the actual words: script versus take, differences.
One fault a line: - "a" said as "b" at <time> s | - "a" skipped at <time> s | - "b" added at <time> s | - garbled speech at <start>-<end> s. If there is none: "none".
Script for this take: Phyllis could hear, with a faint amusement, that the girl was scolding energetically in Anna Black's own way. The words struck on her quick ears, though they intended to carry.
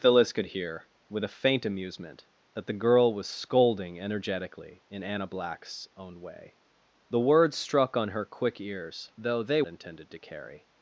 none